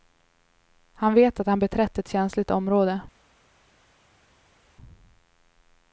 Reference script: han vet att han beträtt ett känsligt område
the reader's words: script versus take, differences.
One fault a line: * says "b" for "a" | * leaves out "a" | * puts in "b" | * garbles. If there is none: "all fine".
all fine